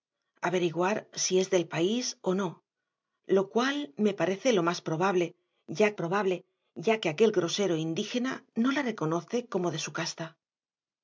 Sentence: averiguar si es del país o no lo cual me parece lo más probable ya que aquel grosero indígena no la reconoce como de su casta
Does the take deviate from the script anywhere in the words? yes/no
yes